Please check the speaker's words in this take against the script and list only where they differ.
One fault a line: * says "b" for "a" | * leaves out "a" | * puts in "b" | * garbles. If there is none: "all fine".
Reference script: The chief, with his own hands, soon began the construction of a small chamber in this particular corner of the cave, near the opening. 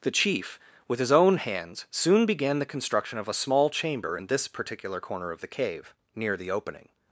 all fine